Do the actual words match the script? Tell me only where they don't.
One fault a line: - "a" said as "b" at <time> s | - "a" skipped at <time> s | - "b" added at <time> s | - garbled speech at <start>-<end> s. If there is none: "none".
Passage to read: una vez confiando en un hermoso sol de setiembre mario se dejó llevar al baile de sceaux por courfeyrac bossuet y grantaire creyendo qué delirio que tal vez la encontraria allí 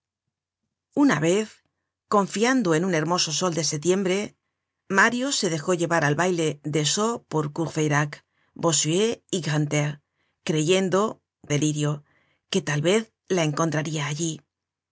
- "qué" skipped at 11.2 s